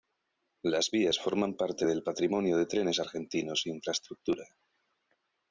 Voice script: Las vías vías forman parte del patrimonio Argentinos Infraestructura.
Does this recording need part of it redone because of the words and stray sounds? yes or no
yes